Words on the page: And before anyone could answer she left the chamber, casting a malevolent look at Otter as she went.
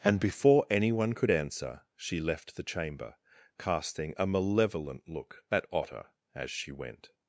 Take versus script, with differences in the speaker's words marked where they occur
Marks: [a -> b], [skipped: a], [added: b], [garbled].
And before anyone could answer she left the chamber, casting a malevolent look at Otter as she went.